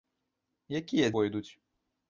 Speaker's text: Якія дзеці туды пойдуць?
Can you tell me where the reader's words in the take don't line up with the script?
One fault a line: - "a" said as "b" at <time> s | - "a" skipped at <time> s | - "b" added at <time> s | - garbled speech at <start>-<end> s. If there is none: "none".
- "дзеці туды" skipped at 1.1 s